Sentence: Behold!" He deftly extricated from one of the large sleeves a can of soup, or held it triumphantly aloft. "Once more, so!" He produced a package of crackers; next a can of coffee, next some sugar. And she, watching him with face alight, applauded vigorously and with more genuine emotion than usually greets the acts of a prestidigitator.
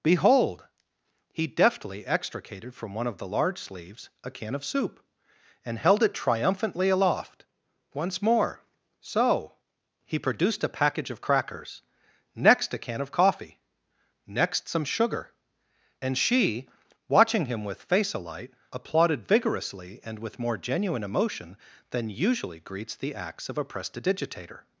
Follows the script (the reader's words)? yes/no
no